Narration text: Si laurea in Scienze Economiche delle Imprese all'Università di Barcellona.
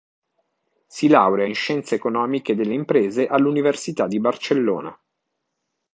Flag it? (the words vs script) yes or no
no